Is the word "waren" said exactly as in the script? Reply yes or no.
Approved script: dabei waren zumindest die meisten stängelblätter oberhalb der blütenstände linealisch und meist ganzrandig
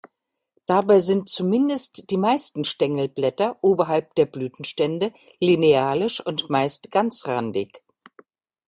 no